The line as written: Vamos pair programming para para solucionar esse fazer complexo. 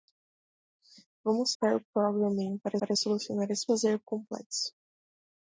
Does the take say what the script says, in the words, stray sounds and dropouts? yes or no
yes